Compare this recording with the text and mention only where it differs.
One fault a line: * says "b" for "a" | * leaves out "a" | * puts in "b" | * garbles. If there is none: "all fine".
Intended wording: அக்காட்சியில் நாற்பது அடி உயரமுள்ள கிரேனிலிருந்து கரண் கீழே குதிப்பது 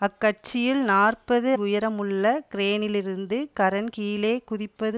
* leaves out "அடி"